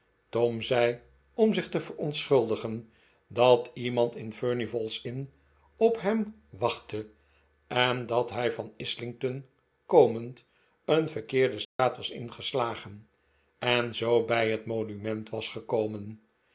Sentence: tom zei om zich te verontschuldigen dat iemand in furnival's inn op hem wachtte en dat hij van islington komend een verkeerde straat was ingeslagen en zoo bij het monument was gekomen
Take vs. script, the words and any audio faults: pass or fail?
fail